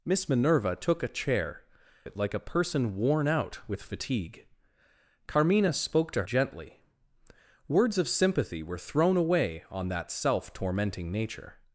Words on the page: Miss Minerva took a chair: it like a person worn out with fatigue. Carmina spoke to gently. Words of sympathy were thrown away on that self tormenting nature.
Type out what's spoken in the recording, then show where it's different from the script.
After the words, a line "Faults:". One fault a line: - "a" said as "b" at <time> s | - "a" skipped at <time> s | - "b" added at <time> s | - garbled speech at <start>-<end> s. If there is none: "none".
Miss Minerva took a chair: it like a person worn out with fatigue. Carmina spoke to gently. Words of sympathy were thrown away on that self tormenting nature.
Faults:
none